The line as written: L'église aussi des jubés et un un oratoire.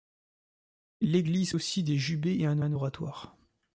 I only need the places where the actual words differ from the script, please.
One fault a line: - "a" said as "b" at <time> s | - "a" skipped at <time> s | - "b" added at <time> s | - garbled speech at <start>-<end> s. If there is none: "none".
none